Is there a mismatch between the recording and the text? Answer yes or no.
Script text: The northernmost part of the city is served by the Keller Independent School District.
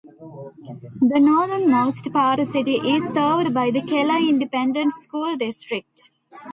yes